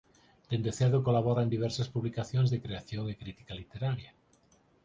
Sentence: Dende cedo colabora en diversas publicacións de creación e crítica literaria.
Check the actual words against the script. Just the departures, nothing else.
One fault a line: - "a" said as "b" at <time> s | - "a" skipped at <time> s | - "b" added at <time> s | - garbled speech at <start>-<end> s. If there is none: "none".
none